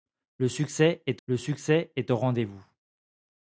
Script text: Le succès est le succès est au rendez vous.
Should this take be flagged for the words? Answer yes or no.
no